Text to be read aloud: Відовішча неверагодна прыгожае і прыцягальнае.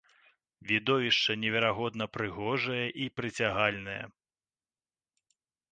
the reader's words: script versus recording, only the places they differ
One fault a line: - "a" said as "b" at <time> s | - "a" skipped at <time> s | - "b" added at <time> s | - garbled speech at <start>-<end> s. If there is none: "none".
none